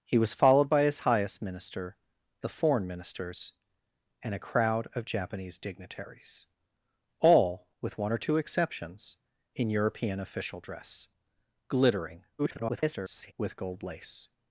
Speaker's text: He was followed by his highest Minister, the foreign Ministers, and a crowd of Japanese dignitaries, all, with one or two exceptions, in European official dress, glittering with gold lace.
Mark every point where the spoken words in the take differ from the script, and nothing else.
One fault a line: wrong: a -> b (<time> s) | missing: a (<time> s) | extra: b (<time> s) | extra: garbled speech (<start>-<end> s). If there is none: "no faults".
extra: garbled speech (12.4-13.3 s)